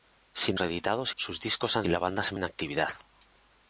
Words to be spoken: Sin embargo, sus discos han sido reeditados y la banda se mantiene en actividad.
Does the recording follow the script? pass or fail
fail